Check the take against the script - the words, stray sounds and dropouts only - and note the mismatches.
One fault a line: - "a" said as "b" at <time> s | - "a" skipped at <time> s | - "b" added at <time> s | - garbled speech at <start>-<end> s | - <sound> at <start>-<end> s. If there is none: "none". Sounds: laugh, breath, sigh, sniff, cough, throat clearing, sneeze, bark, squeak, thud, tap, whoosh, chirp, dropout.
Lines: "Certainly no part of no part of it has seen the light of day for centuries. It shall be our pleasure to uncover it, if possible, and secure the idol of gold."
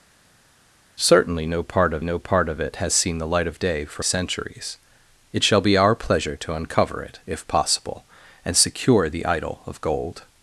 none